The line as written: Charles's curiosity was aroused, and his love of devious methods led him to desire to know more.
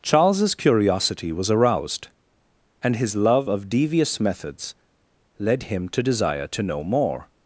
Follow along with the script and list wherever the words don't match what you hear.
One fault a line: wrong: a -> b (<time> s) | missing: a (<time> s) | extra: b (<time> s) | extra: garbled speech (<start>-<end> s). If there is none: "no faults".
no faults